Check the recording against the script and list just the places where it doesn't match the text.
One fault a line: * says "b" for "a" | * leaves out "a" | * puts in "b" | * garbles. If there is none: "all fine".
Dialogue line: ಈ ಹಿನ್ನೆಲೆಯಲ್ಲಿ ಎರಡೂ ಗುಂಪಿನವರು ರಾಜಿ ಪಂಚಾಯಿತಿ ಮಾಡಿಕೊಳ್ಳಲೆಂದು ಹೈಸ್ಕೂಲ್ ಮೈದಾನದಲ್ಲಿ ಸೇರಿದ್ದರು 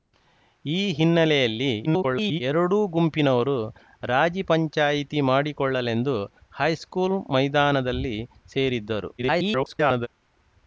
* garbles
* garbles